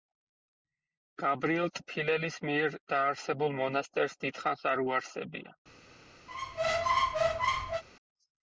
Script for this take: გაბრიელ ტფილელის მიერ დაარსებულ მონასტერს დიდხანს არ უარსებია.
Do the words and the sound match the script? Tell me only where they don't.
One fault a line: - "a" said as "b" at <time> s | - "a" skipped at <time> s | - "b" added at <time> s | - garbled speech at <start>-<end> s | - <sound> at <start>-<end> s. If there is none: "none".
- squeak at 6.3-7.8 s